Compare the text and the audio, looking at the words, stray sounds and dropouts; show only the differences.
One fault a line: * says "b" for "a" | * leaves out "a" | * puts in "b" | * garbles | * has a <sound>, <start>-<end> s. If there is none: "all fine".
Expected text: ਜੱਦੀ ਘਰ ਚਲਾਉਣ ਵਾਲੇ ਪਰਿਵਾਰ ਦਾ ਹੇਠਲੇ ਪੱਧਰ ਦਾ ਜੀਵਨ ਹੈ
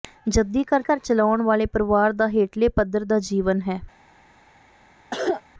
* puts in "ਘਰ"
* has a cough, 5.1-5.4 s